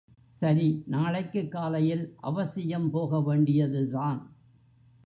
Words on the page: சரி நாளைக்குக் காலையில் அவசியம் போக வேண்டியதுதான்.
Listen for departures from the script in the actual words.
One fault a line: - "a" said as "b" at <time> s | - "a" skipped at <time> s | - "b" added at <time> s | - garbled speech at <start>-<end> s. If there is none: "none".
none